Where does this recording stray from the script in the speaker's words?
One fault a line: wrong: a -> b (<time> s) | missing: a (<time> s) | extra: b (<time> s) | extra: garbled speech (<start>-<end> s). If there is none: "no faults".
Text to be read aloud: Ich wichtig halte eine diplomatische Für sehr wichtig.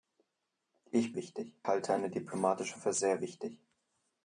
no faults